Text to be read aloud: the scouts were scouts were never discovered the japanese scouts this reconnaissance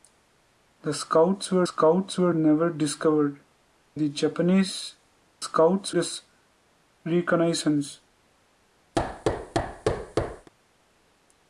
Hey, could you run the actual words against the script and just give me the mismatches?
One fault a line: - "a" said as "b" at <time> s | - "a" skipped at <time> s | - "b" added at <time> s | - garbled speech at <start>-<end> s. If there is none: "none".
none